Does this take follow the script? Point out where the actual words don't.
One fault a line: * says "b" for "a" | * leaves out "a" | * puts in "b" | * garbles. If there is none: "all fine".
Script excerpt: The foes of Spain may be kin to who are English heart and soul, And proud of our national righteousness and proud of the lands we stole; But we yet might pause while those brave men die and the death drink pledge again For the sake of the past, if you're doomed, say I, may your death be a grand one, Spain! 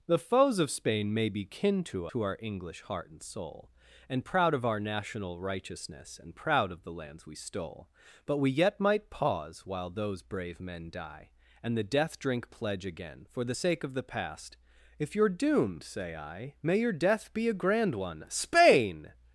all fine